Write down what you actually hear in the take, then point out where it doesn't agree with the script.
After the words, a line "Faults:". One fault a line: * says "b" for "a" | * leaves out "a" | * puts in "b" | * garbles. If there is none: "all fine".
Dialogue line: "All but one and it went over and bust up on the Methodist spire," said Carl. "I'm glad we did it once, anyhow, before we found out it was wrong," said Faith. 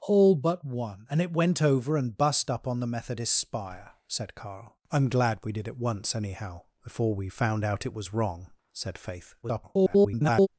"All but one and it went over and bust up on the Methodist spire," said Carl. "I'm glad we did it once, anyhow, before we found out it was wrong," said Faith. [garbled]
Faults:
* garbles